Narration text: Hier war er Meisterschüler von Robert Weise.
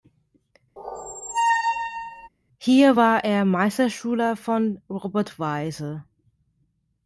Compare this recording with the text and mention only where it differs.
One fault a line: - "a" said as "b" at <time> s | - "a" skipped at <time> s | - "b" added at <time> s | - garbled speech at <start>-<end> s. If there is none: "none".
none